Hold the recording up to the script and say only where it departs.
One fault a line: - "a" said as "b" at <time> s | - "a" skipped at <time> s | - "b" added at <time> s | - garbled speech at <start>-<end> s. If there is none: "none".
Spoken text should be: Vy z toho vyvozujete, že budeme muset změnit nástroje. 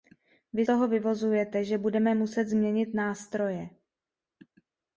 - "z" skipped at 0.7 s